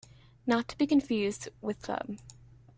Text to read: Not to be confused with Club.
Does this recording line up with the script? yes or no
yes